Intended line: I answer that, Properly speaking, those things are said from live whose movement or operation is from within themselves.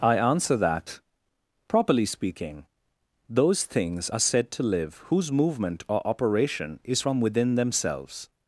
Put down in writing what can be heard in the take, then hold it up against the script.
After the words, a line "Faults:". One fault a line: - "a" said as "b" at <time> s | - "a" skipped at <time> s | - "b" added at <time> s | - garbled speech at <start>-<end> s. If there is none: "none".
I answer that, Properly speaking, those things are said to live whose movement or operation is from within themselves.
Faults:
- "from" said as "to" at 4.5 s